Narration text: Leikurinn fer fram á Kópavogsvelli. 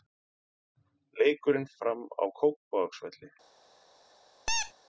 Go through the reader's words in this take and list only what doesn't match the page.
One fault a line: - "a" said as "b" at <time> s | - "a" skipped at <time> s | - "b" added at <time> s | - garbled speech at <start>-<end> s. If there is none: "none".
- "fer" skipped at 1.7 s